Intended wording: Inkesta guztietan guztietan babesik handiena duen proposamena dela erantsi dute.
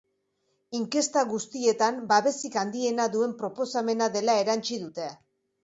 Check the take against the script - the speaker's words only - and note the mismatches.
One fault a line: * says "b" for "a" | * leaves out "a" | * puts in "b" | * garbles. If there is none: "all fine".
* leaves out "guztietan"